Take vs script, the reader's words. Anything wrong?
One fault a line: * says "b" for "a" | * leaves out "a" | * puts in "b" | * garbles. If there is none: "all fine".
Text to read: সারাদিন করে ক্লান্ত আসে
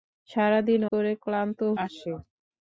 all fine